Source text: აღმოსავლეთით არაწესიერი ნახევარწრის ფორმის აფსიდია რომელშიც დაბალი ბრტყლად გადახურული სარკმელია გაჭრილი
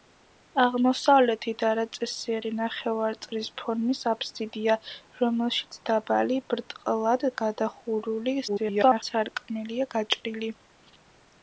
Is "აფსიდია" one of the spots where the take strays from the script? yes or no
no